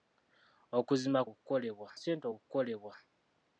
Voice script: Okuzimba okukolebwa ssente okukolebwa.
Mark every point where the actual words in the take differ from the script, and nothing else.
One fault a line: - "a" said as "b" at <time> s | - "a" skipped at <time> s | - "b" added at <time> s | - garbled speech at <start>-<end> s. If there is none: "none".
none